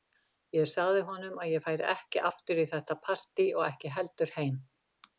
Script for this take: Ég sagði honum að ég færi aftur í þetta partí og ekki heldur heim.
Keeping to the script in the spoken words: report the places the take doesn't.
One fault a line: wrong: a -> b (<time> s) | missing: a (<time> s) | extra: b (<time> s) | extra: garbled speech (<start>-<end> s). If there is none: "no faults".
extra: ekki (1.9 s)